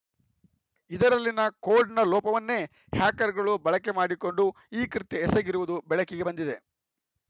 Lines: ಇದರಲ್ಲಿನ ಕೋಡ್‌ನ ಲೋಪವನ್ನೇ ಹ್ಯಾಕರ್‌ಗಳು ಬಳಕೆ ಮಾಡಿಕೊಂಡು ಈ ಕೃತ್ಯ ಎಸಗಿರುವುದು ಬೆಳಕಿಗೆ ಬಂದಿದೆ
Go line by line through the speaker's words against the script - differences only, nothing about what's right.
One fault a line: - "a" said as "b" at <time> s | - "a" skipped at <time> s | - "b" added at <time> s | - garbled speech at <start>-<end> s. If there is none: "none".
none